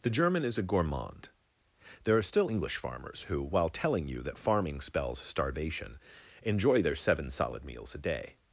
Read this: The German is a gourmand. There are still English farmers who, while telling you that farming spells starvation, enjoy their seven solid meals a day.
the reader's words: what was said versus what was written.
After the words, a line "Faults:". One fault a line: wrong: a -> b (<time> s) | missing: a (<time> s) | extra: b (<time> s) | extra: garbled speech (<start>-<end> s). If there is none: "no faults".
The German is a gourmand. There are still English farmers who, while telling you that farming spells starvation, enjoy their seven solid meals a day.
Faults:
no faults